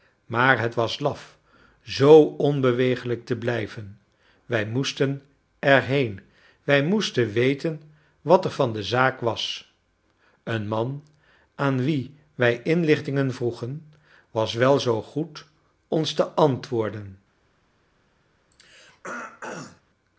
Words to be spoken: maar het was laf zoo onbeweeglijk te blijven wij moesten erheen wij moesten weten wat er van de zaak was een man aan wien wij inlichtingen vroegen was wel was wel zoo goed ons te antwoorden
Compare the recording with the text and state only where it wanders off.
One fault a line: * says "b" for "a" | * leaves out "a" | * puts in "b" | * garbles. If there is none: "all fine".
* leaves out "was wel"